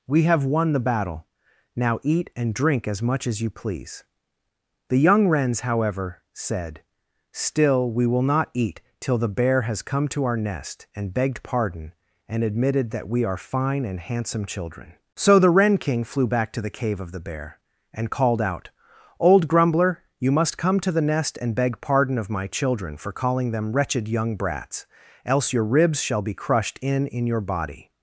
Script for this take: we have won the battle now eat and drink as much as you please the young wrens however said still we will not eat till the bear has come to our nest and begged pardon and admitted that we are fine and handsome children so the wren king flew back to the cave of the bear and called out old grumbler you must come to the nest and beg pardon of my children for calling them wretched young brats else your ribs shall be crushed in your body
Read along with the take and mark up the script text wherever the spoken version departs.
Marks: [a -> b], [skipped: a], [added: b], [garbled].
we have won the battle now eat and drink as much as you please the young wrens however said still we will not eat till the bear has come to our nest and begged pardon and admitted that we are fine and handsome children so the wren king flew back to the cave of the bear and called out old grumbler you must come to the nest and beg pardon of my children for calling them wretched young brats else your ribs shall be crushed in [added: in] your body